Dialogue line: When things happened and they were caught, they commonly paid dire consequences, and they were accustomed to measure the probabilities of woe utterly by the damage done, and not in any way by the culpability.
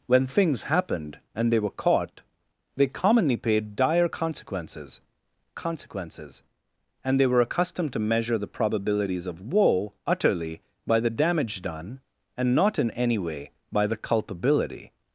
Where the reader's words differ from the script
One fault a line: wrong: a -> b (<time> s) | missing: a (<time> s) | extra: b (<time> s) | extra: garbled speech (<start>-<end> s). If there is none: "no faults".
extra: consequences (5.5 s)